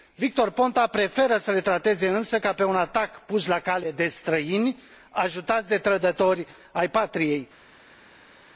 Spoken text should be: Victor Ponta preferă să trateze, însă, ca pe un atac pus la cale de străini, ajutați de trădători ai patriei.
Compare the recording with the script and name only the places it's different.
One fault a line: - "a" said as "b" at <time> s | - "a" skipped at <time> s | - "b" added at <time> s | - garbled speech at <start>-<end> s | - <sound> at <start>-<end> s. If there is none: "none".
- "le" added at 1.5 s